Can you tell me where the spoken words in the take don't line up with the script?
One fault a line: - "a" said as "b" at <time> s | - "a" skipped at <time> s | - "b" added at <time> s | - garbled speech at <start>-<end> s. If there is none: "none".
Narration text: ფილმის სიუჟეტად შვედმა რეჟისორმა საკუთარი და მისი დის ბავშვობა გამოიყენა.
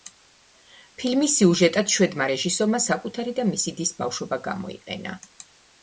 none